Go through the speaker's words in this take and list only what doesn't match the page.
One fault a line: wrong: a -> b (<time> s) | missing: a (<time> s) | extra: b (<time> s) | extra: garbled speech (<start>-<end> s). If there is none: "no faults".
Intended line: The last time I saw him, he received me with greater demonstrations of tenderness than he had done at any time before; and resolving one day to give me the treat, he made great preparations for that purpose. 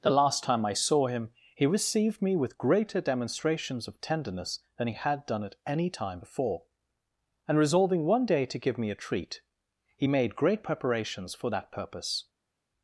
wrong: the -> a (8.9 s)